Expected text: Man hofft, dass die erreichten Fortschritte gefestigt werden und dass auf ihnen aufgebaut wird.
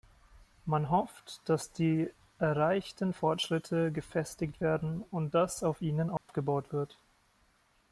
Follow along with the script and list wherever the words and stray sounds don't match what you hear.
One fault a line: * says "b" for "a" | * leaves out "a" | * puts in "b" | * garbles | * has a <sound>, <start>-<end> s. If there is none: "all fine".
* has a dropout, 6.2-6.3 s